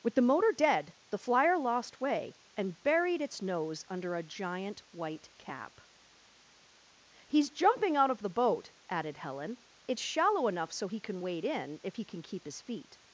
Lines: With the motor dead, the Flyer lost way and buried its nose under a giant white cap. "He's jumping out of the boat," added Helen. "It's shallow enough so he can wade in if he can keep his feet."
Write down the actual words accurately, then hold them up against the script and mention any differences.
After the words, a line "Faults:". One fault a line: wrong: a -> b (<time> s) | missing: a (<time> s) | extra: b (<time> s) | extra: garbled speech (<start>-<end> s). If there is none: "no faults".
With the motor dead, the Flyer lost way and buried its nose under a giant white cap. "He's jumping out of the boat," added Helen. "It's shallow enough so he can wade in if he can keep his feet."
Faults:
no faults